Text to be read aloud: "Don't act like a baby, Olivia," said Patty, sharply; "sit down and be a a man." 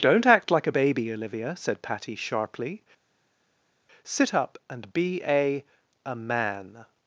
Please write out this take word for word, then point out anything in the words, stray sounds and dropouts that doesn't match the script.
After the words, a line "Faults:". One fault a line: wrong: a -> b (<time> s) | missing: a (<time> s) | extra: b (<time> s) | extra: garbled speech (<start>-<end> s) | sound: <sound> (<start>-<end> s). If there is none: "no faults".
"Don't act like a baby, Olivia," said Patty, sharply; "sit up and be a a man."
Faults:
wrong: down -> up (4.3 s)